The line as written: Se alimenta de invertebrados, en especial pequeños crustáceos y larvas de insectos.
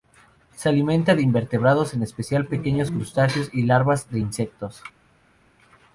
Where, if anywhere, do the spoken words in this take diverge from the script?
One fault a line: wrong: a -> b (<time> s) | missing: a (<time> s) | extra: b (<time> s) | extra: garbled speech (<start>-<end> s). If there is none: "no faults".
no faults